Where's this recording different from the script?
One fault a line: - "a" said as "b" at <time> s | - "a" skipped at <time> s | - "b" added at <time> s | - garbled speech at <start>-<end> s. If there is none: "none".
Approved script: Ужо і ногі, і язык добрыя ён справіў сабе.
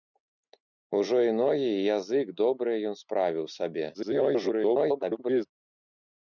- garbled speech at 3.9-5.5 s